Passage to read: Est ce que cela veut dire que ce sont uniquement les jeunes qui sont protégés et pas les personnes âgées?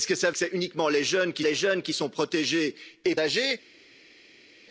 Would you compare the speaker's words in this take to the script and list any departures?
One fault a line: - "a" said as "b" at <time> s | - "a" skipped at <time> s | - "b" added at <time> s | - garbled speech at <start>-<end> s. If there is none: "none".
- "veut dire" skipped at 0.3 s
- "les jeunes qui" added at 1.4 s
- "pas les personnes" skipped at 3.2 s